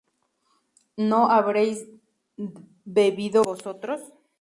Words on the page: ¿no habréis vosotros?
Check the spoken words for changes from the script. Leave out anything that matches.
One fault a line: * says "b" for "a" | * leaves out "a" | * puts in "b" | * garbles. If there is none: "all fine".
* puts in "bebido"